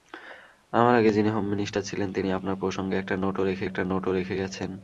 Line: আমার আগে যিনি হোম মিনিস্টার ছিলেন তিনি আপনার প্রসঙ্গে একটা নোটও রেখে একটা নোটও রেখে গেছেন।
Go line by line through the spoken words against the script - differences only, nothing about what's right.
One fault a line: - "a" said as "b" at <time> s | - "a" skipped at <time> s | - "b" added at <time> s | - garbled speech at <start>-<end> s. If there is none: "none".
none